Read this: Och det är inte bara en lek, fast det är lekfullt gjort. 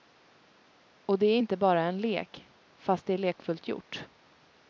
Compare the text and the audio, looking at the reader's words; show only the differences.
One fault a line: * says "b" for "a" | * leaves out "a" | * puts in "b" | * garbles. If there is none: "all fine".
all fine